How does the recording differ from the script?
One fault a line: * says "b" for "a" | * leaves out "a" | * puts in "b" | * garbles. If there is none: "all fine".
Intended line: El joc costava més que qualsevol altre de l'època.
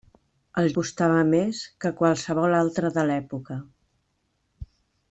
* leaves out "joc"